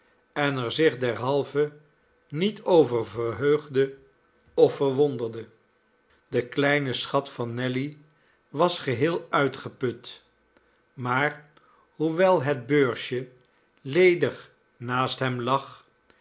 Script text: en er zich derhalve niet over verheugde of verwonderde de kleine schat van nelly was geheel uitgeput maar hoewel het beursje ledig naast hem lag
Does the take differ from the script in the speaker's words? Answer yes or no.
no